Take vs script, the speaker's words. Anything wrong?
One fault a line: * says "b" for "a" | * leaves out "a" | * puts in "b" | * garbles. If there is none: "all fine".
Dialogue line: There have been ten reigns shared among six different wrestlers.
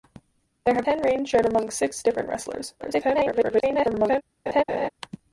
* leaves out "been"
* garbles